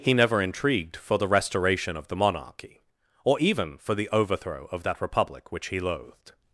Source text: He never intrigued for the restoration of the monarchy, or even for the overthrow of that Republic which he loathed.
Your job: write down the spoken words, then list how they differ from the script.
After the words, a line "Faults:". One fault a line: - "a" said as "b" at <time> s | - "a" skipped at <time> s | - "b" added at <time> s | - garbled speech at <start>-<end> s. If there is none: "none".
He never intrigued for the restoration of the monarchy, or even for the overthrow of that Republic which he loathed.
Faults:
none